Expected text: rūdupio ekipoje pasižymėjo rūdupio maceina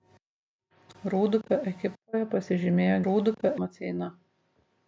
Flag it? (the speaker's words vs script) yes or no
no